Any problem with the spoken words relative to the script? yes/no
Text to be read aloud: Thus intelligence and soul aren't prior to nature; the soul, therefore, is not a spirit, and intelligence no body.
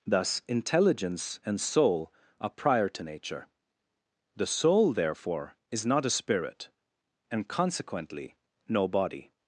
yes